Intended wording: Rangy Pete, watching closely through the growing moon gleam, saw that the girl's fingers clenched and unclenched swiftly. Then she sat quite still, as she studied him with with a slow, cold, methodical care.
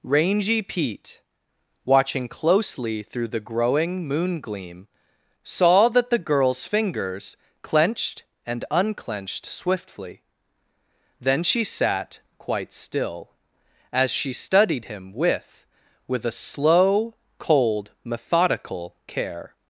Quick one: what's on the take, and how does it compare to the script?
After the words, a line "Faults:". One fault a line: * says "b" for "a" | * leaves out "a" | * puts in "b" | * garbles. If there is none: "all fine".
Rangy Pete, watching closely through the growing moon gleam, saw that the girl's fingers clenched and unclenched swiftly. Then she sat quite still, as she studied him with with a slow, cold, methodical care.
Faults:
all fine